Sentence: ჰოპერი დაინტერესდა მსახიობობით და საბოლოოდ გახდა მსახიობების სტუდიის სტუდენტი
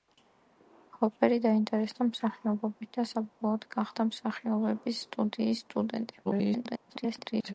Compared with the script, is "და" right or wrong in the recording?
right